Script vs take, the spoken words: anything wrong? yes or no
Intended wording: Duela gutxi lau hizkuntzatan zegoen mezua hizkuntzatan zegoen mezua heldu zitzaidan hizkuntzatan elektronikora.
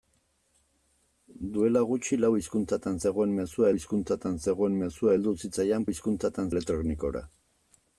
no